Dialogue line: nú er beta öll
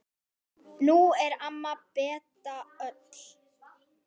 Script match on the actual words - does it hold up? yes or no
no